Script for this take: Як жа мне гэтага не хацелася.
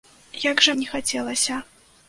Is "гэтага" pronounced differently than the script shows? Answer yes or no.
yes